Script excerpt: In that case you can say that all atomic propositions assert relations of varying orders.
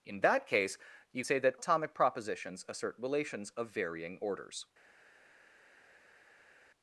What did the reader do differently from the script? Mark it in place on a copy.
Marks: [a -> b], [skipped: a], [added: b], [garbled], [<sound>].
In that case you [skipped: can] say that [skipped: all] atomic propositions assert relations of varying orders.